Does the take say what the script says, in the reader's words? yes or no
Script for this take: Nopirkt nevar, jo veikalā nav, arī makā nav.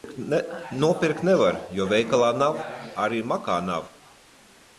yes